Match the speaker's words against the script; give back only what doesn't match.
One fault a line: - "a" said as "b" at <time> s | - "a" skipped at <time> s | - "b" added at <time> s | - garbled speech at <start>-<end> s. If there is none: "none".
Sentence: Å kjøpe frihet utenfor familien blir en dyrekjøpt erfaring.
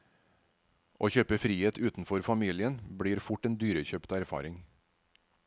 - "fort" added at 3.3 s